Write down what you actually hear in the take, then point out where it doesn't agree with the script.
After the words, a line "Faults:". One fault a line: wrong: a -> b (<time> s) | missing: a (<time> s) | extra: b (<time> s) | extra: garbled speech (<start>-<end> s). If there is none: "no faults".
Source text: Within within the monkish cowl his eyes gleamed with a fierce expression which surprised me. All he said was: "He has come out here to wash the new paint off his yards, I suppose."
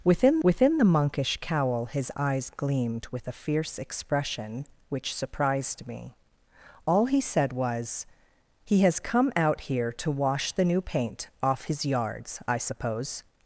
Within within the monkish cowl his eyes gleamed with a fierce expression which surprised me. All he said was: "He has come out here to wash the new paint off his yards, I suppose."
Faults:
no faults